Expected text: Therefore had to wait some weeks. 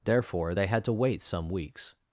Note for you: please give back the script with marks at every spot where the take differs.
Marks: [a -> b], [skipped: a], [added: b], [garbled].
Therefore [added: they] had to wait some weeks.